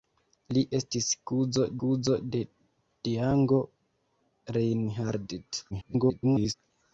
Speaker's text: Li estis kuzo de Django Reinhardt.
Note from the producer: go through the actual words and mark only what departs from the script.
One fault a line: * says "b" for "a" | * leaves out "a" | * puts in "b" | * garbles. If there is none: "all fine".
* puts in "kuzo"
* garbles